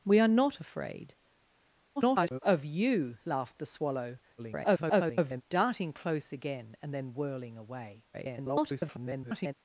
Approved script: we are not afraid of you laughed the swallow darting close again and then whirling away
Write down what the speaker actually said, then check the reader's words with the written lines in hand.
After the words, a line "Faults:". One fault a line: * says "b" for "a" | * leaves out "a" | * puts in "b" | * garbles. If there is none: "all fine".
we are not afraid [garbled] of you laughed the swallow [garbled] darting close again and then whirling away [garbled]
Faults:
* garbles
* garbles
* garbles